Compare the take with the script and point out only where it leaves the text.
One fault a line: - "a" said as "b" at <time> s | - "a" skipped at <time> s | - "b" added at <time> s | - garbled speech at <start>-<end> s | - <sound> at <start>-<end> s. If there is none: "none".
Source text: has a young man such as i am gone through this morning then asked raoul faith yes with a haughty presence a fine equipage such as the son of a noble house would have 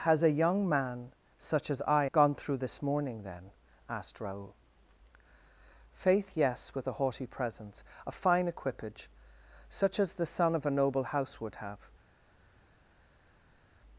- "am" skipped at 2.0 s